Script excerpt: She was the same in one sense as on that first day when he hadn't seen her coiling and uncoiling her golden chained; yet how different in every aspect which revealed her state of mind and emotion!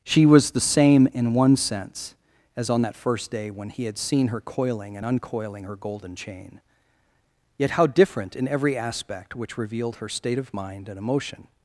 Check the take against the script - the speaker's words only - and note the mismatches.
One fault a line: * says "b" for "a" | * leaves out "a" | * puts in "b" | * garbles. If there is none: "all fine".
* says "had" for "hadn't"
* says "chain" for "chained"